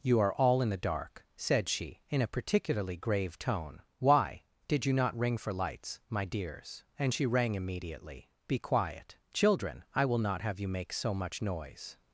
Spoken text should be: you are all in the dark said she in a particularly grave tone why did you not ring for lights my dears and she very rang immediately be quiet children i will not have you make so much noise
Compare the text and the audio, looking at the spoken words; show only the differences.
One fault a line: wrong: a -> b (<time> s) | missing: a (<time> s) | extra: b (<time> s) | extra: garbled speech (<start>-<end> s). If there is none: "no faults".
missing: very (7.3 s)